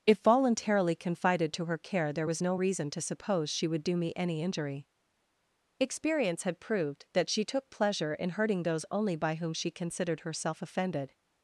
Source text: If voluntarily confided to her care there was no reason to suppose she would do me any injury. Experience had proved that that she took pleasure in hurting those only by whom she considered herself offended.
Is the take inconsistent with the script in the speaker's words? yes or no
yes